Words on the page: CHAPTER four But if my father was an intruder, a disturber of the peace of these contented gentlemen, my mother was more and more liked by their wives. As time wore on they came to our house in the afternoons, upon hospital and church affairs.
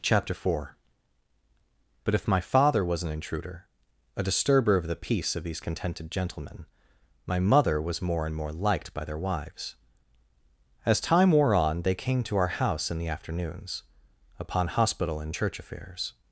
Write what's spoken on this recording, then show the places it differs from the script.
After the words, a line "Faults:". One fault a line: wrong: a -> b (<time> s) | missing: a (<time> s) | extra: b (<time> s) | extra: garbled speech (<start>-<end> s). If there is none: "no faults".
CHAPTER four But if my father was an intruder, a disturber of the peace of these contented gentlemen, my mother was more and more liked by their wives. As time wore on they came to our house in the afternoons, upon hospital and church affairs.
Faults:
no faults